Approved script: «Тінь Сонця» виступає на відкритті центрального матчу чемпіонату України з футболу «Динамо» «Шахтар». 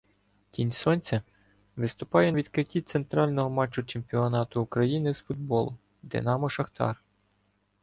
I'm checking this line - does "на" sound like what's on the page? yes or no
no